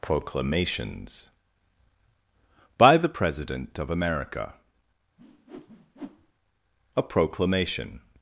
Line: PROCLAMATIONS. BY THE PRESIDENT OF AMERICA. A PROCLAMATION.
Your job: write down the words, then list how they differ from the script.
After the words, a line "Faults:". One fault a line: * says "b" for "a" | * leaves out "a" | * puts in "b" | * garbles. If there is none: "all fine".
PROCLAMATIONS. BY THE PRESIDENT OF AMERICA. A PROCLAMATION.
Faults:
all fine